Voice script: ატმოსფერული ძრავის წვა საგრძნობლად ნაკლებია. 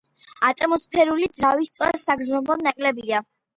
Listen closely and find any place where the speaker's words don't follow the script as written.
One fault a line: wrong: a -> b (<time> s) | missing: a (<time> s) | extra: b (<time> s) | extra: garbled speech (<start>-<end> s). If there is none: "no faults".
no faults